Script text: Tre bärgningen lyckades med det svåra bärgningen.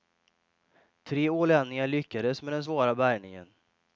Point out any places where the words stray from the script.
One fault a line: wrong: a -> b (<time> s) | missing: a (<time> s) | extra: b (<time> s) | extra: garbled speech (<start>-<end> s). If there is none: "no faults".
wrong: bärgningen -> ålänningar (1.3 s)
wrong: det -> den (2.5 s)